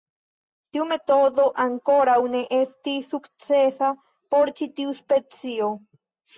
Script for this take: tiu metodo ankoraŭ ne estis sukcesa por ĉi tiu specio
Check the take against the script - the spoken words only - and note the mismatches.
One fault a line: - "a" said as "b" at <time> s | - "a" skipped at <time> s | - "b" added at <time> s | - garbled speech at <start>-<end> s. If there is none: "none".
none